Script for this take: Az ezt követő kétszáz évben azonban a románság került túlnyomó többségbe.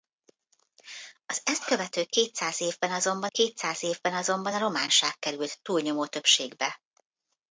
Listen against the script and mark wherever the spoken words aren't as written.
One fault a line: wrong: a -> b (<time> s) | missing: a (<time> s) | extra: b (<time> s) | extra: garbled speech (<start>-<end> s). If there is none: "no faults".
extra: kétszáz évben azonban (3.2 s)